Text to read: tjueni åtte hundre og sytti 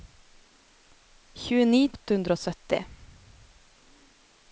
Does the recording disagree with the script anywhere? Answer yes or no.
no